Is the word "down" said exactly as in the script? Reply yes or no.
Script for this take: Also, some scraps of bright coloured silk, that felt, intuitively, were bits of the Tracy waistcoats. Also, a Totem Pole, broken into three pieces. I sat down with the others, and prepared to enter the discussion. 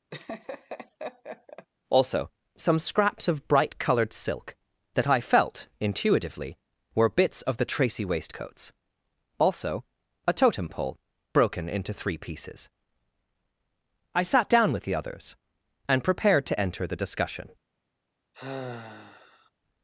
yes